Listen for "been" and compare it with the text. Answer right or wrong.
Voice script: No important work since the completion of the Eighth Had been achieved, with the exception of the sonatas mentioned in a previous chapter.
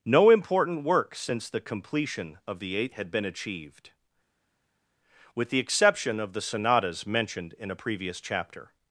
right